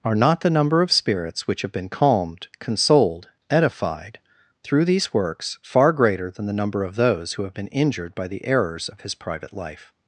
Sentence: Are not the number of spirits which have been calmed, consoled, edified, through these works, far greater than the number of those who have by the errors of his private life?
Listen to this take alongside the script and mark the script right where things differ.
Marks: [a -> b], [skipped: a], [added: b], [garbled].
Are not the number of spirits which have been calmed, consoled, edified, through these works, far greater than the number of those who have [added: been injured] by the errors of his private life?